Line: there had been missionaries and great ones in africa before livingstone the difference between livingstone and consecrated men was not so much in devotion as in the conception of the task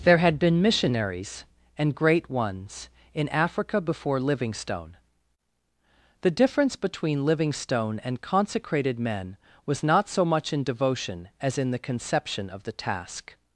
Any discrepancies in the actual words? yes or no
no